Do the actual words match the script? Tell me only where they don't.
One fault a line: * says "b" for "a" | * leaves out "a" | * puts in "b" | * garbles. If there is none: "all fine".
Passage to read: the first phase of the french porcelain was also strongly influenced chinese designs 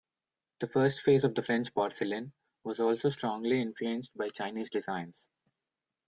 * puts in "by"